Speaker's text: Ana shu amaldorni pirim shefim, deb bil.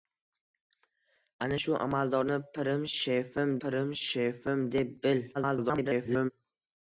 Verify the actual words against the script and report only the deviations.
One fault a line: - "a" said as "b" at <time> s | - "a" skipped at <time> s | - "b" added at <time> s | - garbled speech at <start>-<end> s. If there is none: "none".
- "pirim shefim" added at 3.6 s
- garbled speech at 5.3-6.3 s